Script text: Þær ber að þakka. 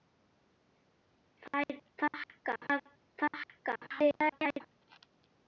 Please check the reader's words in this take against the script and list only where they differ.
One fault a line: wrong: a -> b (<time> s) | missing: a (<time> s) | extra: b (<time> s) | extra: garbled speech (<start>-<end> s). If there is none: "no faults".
wrong: ber -> þakka (2.0 s)
extra: garbled speech (3.9-4.6 s)